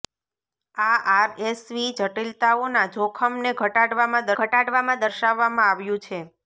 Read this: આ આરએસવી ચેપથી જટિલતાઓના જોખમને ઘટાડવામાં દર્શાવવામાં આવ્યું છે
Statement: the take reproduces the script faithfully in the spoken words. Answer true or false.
false